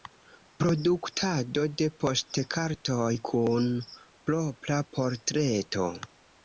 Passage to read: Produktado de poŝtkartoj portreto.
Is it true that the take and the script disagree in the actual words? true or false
true